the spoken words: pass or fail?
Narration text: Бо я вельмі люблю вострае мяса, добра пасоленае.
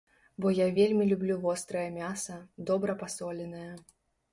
pass